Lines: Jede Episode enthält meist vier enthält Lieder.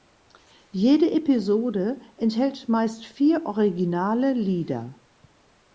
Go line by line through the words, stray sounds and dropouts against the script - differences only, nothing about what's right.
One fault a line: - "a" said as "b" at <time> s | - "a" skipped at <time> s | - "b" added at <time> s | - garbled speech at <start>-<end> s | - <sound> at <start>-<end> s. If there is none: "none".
- "enthält" said as "originale" at 3.5 s